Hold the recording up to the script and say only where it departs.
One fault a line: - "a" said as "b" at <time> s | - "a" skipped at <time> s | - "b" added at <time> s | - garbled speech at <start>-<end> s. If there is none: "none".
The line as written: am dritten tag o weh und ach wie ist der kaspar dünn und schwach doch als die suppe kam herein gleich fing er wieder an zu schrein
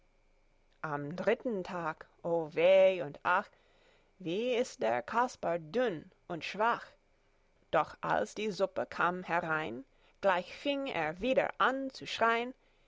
none